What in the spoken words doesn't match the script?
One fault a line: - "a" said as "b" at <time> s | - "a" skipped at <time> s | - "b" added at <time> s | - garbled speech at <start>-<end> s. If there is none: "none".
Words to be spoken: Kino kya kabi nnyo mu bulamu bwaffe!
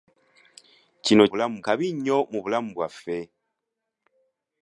- "kya" said as "bulamu" at 1.3 s